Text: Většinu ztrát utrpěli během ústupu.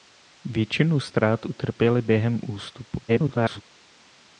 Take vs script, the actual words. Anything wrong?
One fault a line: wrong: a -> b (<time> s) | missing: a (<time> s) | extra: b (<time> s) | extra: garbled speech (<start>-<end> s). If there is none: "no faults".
extra: garbled speech (3.1-3.6 s)